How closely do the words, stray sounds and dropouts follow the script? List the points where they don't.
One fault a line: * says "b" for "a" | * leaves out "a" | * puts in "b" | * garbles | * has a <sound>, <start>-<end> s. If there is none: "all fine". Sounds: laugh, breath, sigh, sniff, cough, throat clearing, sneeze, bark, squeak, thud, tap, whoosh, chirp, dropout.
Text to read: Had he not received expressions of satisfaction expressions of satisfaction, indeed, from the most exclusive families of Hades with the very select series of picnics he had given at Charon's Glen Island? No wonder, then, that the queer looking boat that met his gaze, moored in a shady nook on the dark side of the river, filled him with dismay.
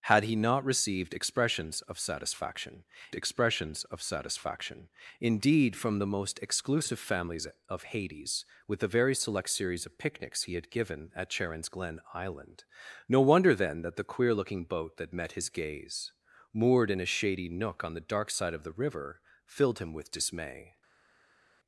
all fine